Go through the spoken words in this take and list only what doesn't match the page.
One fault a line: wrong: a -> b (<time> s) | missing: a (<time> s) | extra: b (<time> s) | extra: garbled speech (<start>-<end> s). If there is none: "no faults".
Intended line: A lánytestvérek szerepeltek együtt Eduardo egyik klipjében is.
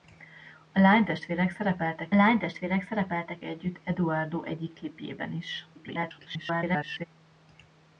extra: lánytestvérek szerepeltek (2.1 s)
extra: garbled speech (5.7-7.0 s)